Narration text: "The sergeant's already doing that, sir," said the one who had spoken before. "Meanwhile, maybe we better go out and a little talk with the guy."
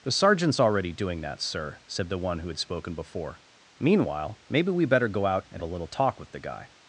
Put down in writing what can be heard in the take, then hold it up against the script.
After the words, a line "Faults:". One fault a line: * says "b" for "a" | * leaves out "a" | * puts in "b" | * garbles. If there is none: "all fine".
"The sergeant's already doing that, sir," said the one who had spoken before. "Meanwhile, maybe we better go out and a little talk with the guy."
Faults:
all fine